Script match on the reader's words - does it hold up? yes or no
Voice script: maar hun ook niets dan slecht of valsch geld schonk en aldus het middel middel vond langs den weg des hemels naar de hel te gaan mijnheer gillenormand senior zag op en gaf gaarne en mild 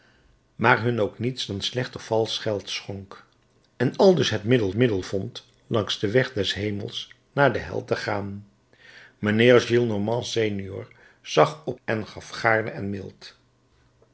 yes